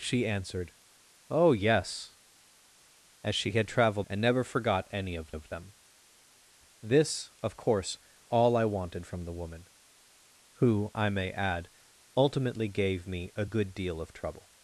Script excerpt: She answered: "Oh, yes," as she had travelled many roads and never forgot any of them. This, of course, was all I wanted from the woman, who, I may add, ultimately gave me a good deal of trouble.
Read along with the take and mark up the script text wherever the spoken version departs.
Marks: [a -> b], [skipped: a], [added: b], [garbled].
She answered: "Oh, yes," as she had travelled [skipped: many roads] and never forgot any of [added: of] them. This, of course, [skipped: was] all I wanted from the woman, who, I may add, ultimately gave me a good deal of trouble.